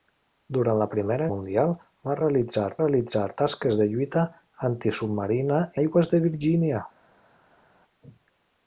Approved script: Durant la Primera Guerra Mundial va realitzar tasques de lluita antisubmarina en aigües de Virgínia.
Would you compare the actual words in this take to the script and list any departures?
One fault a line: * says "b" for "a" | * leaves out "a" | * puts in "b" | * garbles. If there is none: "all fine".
* leaves out "Guerra"
* puts in "realitzar"
* leaves out "en"